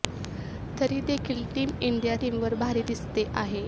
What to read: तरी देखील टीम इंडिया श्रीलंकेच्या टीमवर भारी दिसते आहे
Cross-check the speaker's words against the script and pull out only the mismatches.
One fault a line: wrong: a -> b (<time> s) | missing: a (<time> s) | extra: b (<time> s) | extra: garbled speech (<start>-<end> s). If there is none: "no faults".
missing: श्रीलंकेच्या (2.1 s)